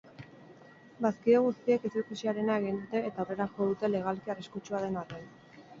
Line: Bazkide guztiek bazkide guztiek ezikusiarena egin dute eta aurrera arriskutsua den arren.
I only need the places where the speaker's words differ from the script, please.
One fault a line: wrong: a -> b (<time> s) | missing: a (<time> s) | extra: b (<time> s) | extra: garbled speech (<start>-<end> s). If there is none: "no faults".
missing: bazkide guztiek (1.9 s)
extra: jo dute legalki (3.6 s)